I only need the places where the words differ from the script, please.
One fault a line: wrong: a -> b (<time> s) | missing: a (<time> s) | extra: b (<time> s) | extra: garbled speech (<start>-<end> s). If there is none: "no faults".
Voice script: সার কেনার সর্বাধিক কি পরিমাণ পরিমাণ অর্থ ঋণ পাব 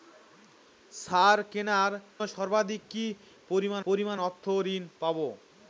no faults